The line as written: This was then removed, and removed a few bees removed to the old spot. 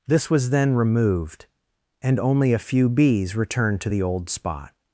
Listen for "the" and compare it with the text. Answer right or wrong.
right